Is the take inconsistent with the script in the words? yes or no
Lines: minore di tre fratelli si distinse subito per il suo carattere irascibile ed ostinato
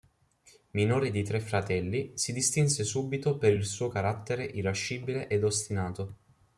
no